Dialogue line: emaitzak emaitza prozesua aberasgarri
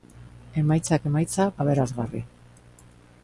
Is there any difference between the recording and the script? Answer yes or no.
yes